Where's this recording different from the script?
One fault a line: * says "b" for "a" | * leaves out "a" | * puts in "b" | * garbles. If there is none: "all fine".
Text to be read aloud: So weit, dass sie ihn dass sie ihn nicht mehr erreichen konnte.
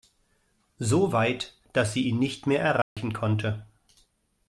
* leaves out "dass sie ihn"